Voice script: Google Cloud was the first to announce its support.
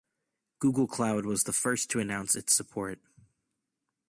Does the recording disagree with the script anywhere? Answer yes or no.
no